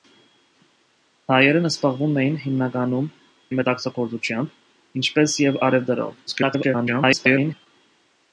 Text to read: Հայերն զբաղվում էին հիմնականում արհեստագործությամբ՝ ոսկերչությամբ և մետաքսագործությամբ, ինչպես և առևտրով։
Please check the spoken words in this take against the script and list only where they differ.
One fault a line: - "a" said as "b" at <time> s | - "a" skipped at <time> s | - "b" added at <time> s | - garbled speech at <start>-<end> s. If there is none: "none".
- "արհեստագործությամբ ոսկերչությամբ" skipped at 3.1 s
- garbled speech at 6.3-7.7 s